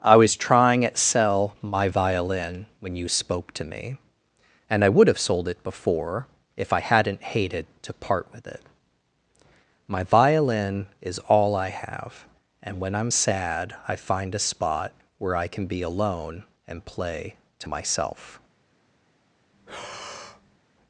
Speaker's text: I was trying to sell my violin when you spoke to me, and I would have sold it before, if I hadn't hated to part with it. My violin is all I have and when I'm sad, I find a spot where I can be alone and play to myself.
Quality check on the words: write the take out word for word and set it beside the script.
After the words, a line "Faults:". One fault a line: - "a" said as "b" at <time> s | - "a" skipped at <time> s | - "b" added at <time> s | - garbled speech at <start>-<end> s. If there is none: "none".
I was trying at sell my violin when you spoke to me, and I would have sold it before, if I hadn't hated to part with it. My violin is all I have and when I'm sad, I find a spot where I can be alone and play to myself.
Faults:
- "to" said as "at" at 0.8 s